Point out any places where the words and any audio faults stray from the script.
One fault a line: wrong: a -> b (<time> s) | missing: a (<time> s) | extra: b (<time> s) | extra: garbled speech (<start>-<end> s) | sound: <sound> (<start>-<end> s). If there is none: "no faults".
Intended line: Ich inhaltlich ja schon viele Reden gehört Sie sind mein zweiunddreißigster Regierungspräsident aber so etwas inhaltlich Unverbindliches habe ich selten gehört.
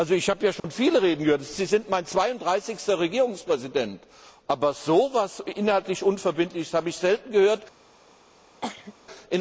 wrong: inhaltlich -> habe (0.3 s)
sound: dropout (0.6-0.6 s)
sound: cough (8.6-8.9 s)